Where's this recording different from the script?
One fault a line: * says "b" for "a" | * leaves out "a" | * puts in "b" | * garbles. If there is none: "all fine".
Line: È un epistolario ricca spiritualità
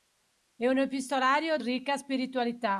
all fine